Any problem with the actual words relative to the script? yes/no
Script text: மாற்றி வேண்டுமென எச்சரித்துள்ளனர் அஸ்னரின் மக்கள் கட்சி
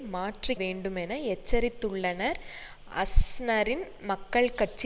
no